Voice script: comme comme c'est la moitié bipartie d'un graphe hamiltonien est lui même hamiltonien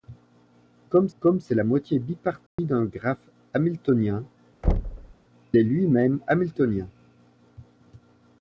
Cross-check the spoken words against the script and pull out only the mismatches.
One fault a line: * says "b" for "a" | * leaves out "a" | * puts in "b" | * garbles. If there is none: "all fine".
all fine